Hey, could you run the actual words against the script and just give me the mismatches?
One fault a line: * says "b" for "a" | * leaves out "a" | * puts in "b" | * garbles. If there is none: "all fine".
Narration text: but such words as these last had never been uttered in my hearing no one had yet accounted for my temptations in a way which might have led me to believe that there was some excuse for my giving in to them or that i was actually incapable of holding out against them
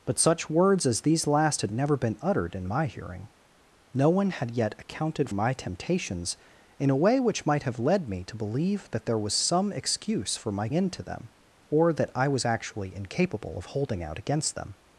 * leaves out "for"
* leaves out "giving"